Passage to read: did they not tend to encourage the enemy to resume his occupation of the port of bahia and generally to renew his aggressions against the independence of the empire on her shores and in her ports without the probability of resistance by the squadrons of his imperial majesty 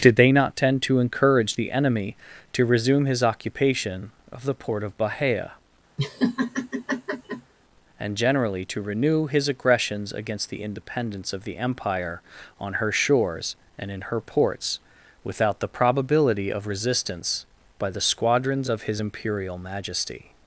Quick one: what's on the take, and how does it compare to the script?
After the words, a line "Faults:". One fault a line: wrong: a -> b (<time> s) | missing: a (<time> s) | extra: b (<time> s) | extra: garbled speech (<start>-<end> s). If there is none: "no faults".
did they not tend to encourage the enemy to resume his occupation of the port of bahia and generally to renew his aggressions against the independence of the empire on her shores and in her ports without the probability of resistance by the squadrons of his imperial majesty
Faults:
no faults